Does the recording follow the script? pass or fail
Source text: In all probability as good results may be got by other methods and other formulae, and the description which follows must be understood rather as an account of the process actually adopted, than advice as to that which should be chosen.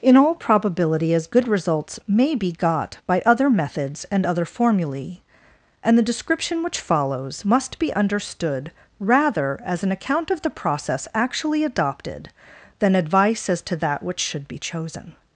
pass